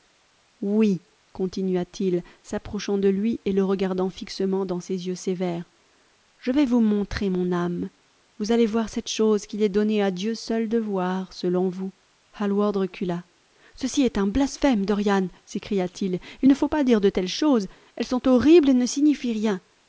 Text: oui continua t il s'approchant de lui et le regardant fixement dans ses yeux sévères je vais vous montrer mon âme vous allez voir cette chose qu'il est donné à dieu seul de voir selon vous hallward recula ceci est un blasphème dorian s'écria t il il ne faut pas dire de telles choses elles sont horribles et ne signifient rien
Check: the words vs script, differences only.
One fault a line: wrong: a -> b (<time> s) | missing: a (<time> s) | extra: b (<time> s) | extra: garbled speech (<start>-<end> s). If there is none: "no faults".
no faults